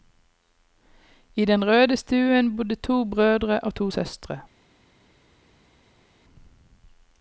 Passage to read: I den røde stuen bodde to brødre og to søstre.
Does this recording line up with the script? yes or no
yes